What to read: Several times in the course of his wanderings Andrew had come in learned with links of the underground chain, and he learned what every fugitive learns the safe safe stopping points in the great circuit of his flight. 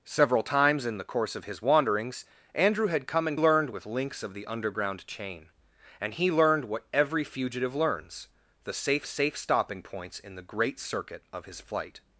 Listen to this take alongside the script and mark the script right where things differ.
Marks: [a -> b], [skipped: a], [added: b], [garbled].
Several times in the course of his wanderings Andrew had come in learned with links of the underground chain, and he learned what every fugitive learns the safe safe stopping points in the great circuit of his flight.